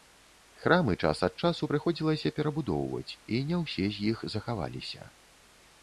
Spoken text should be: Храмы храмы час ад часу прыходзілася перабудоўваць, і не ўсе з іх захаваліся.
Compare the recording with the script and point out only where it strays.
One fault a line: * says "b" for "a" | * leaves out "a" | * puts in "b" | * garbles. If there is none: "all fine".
* leaves out "храмы"